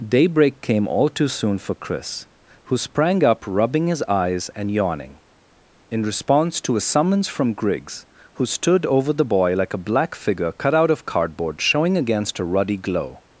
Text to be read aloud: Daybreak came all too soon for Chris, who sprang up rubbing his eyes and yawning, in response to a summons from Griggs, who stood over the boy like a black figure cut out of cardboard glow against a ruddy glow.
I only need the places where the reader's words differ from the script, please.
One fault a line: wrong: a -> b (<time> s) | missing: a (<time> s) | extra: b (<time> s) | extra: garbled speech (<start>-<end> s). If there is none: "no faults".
wrong: glow -> showing (11.6 s)